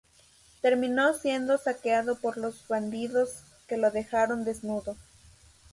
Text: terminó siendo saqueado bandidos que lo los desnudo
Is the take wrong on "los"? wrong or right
wrong